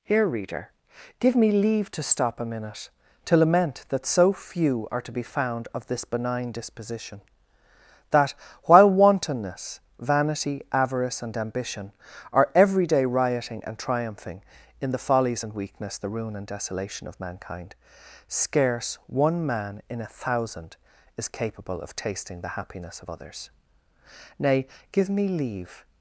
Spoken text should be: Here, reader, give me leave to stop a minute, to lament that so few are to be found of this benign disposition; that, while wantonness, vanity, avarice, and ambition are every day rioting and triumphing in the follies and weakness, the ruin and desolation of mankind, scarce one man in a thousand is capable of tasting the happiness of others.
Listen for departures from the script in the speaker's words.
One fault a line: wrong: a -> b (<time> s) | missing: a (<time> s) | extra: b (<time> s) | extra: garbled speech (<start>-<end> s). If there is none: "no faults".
extra: Nay give me leave (24.4 s)